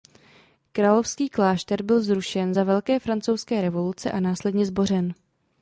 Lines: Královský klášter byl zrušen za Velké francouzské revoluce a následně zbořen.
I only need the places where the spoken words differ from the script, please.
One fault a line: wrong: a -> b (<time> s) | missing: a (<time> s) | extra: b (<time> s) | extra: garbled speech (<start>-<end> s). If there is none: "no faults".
no faults